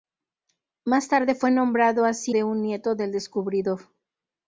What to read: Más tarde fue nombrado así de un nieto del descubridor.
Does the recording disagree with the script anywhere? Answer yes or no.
no